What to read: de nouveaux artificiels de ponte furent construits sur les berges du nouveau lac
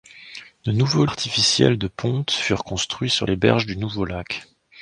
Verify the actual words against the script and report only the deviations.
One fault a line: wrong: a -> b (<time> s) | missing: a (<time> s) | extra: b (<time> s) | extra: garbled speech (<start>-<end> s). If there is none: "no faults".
no faults